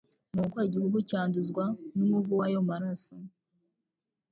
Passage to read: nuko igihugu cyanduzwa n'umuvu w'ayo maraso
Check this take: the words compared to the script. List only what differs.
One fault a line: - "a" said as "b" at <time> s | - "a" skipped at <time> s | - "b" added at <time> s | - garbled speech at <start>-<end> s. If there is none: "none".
none